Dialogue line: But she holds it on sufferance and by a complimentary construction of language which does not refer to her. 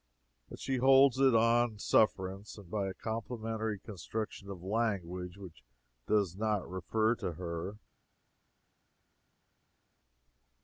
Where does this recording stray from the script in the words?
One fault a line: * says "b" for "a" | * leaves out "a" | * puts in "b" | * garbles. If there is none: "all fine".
all fine